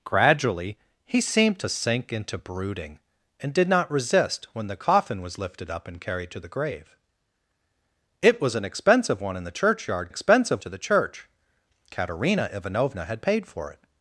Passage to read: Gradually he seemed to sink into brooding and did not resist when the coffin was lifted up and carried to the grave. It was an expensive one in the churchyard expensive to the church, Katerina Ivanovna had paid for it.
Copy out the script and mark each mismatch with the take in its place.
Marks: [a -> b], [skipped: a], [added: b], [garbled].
Gradually he seemed to sink into brooding and did not resist when the coffin was lifted up and carried to the grave. It was an expensive one in the churchyard expensive to the church, Katerina Ivanovna had paid for it.